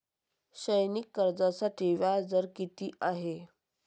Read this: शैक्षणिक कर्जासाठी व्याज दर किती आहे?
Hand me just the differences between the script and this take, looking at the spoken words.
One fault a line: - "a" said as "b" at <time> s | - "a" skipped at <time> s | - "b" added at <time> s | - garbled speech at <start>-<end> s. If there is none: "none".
none